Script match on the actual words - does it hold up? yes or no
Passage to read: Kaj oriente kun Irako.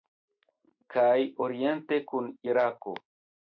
yes